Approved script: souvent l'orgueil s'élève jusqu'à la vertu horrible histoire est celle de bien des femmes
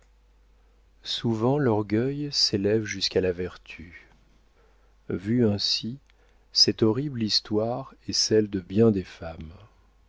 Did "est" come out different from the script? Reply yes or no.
no